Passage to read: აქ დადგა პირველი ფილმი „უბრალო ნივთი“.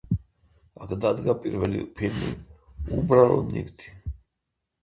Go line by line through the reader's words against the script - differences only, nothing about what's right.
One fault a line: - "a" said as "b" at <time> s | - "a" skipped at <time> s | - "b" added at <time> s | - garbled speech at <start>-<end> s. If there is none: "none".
none